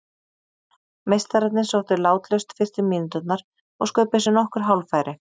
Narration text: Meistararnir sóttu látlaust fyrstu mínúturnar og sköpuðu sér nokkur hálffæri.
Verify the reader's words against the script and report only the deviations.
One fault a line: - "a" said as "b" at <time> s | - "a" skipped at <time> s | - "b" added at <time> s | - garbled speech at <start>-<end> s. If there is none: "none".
none